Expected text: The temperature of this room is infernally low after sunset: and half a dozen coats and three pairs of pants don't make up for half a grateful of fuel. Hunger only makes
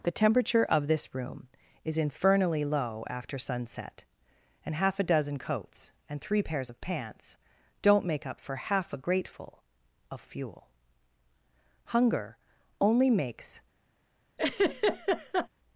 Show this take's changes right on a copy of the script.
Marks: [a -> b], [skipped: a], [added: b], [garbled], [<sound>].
The temperature of this room is infernally low after sunset: and half a dozen coats and three pairs of pants don't make up for half a grateful of fuel. Hunger only makes [laugh]